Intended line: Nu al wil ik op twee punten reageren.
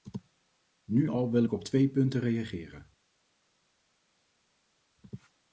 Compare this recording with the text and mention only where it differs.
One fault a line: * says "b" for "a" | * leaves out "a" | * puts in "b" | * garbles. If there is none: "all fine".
all fine